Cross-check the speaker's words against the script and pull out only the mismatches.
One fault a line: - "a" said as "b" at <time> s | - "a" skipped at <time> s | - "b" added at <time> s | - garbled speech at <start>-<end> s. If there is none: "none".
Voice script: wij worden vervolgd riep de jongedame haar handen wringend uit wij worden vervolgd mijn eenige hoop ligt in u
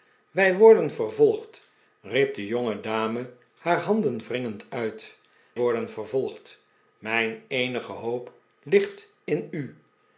- "wij" skipped at 5.2 s